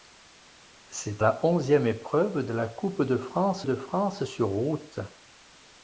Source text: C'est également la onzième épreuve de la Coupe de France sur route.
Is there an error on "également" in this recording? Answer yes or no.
yes